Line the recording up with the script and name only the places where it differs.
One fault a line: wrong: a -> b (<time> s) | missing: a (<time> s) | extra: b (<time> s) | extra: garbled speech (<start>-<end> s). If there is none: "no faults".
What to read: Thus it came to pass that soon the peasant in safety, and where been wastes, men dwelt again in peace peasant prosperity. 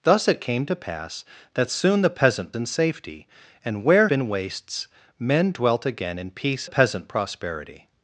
no faults